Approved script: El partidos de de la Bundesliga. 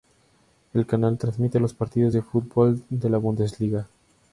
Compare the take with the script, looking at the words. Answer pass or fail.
fail